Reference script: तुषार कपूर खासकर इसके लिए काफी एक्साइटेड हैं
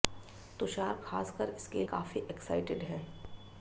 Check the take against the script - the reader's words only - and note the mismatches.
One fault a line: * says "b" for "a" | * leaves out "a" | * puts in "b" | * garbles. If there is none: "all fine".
* leaves out "कपूर"
* leaves out "लिए"